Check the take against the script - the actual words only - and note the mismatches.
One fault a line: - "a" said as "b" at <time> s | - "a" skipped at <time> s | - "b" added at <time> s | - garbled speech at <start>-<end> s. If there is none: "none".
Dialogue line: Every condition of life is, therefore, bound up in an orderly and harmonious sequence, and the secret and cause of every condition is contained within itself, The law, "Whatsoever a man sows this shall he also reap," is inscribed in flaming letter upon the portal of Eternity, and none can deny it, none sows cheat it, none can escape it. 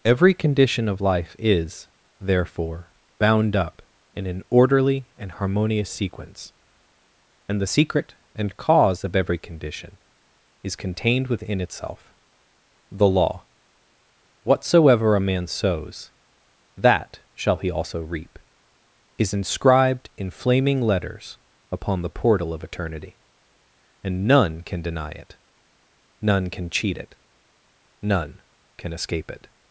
- "this" said as "that" at 16.8 s
- "letter" said as "letters" at 20.8 s
- "sows" said as "can" at 26.5 s